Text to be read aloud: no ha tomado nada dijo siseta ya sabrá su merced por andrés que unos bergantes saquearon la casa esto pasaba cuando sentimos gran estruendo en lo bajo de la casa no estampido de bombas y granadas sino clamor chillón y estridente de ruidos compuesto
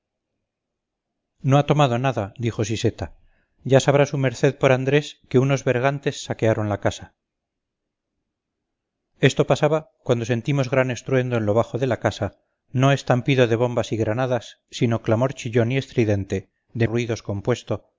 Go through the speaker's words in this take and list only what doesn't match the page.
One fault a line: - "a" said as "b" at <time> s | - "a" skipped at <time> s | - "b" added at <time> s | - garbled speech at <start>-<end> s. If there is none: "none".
none